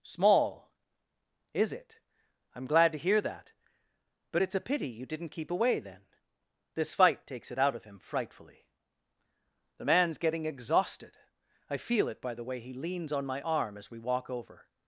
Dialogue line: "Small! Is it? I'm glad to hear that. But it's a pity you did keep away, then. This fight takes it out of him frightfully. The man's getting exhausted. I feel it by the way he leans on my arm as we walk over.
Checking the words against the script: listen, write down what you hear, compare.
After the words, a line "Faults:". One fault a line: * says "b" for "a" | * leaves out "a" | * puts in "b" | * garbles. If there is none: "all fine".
"Small! Is it? I'm glad to hear that. But it's a pity you didn't keep away, then. This fight takes it out of him frightfully. The man's getting exhausted. I feel it by the way he leans on my arm as we walk over.
Faults:
* says "didn't" for "did"